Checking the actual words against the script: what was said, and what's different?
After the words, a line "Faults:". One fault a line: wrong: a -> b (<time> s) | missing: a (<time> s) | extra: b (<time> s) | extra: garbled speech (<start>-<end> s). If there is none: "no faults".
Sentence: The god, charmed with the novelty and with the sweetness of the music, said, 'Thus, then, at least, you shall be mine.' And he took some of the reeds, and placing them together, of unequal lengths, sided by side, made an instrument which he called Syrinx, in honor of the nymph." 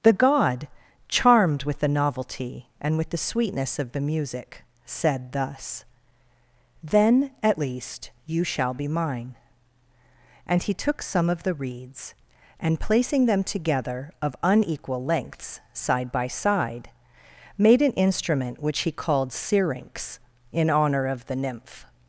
The god, charmed with the novelty and with the sweetness of the music, said, 'Thus, then, at least, you shall be mine.' And he took some of the reeds, and placing them together, of unequal lengths, side by side, made an instrument which he called Syrinx, in honor of the nymph."
Faults:
wrong: sided -> side (15.7 s)